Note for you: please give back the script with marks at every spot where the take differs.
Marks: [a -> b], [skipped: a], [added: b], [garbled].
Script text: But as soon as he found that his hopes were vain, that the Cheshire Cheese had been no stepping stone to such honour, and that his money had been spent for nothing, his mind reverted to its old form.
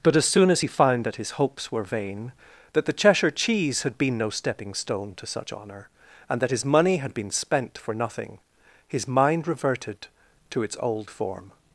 But as soon as he found that his hopes were vain, that the Cheshire Cheese had been no stepping stone to such honour, and that his money had been spent for nothing, his mind reverted to its old form.